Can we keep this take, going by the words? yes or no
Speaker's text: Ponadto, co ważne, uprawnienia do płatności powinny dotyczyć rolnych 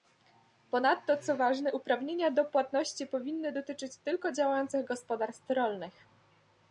no